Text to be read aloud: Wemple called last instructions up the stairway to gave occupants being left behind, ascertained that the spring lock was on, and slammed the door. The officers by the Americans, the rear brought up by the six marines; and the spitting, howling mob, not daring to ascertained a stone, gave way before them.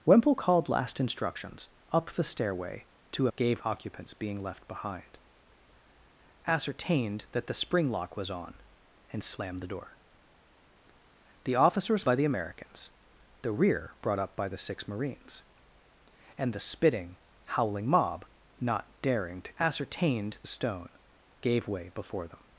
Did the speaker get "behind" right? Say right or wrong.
right